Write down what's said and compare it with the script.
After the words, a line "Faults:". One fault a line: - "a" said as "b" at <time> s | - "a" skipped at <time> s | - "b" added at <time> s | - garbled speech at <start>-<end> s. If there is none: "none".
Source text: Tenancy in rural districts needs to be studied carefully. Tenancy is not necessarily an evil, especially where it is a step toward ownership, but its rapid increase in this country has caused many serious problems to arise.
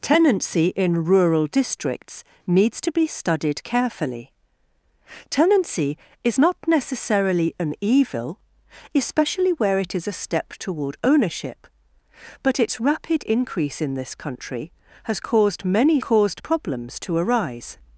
Tenancy in rural districts needs to be studied carefully. Tenancy is not necessarily an evil, especially where it is a step toward ownership, but its rapid increase in this country has caused many caused problems to arise.
Faults:
- "serious" said as "caused" at 16.0 s